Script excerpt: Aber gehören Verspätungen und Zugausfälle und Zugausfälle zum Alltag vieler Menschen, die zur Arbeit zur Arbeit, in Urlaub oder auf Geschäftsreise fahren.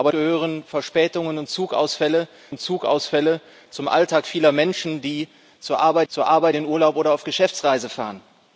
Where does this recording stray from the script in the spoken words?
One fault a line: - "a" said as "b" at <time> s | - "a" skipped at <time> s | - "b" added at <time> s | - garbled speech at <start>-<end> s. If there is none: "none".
none